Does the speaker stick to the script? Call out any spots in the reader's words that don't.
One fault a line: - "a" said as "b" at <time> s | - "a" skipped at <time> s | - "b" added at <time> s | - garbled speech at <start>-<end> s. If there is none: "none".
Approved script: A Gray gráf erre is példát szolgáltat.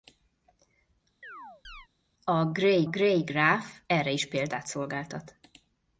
- "Gray" added at 2.8 s